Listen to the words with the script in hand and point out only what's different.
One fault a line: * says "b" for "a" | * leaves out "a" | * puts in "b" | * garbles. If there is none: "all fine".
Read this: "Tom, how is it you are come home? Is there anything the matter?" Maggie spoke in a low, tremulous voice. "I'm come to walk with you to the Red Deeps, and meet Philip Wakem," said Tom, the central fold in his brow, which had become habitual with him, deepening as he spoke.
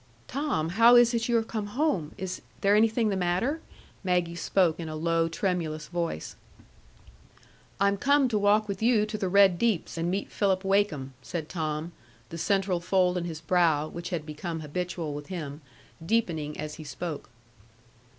all fine